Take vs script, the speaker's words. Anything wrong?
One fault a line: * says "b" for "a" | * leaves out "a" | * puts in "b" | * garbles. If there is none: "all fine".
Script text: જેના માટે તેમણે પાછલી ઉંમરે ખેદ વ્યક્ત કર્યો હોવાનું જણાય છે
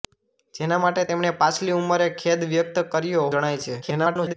* leaves out "હોવાનું"
* garbles